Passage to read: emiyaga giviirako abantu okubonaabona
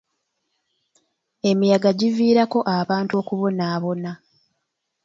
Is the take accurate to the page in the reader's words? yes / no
yes